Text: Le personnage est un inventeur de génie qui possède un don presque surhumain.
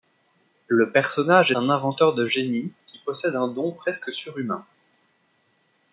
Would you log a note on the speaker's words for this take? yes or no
yes